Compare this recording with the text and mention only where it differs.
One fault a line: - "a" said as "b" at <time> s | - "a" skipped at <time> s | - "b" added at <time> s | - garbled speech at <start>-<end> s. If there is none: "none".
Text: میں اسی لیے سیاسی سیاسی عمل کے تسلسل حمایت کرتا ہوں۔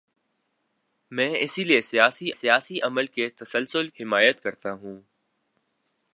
none